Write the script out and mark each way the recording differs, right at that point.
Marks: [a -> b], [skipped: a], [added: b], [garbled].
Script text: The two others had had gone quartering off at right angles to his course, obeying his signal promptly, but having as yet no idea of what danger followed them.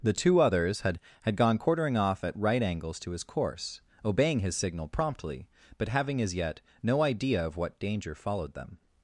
The two others had had gone quartering off at right angles to his course, obeying his signal promptly, but having as yet no idea of what danger followed them.